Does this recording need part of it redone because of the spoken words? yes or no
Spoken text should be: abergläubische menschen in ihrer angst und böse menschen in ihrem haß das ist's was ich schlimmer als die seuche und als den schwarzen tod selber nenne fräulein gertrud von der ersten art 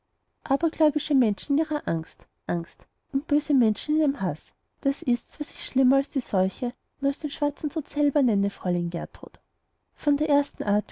yes